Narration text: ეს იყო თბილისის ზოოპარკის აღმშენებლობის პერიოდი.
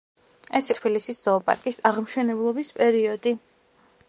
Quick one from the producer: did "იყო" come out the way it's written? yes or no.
no